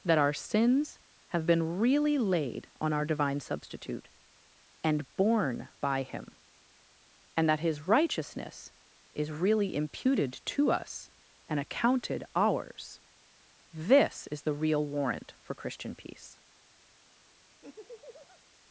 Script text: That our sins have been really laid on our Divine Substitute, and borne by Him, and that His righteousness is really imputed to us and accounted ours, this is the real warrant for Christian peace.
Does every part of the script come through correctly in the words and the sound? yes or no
no